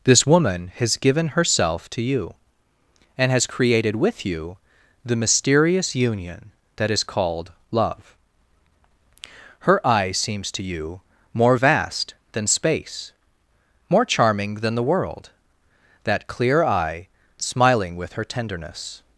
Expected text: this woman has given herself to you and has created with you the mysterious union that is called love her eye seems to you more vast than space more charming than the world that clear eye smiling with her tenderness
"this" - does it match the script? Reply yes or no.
yes